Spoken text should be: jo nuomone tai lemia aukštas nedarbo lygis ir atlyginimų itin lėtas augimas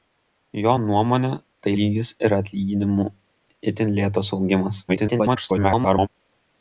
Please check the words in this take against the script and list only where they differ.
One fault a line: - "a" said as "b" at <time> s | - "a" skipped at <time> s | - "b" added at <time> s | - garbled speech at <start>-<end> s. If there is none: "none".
- "lemia aukštas nedarbo" skipped at 1.7 s
- garbled speech at 4.9-6.1 s